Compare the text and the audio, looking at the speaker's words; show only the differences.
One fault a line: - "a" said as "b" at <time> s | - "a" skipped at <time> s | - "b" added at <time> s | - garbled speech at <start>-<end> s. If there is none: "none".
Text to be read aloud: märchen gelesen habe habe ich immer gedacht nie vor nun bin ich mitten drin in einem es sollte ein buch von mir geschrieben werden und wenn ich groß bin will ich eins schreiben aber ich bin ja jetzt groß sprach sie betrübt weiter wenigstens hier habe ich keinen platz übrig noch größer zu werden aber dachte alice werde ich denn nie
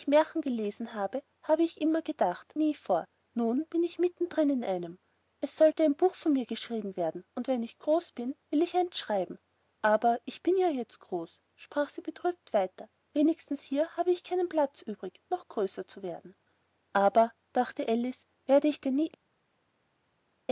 none